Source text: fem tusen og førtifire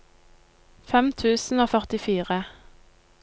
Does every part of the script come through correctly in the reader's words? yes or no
yes